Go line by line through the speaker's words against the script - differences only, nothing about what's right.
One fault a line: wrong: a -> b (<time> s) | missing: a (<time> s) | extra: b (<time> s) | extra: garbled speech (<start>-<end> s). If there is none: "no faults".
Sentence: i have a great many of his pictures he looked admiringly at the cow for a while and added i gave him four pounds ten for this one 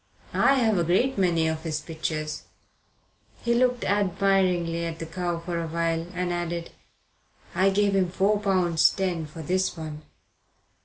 no faults